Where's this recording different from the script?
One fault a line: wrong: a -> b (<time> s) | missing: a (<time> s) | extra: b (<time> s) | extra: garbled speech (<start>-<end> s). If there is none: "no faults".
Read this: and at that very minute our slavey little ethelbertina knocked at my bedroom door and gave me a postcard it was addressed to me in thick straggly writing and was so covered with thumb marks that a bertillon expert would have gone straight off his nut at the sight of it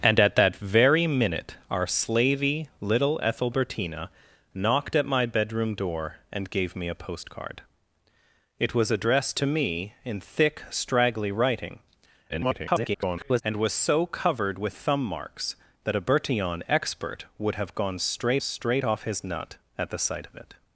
extra: garbled speech (12.3-13.4 s)
extra: straight (18.4 s)